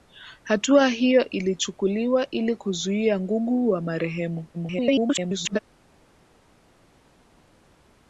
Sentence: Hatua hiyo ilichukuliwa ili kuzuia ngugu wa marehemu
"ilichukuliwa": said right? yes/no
yes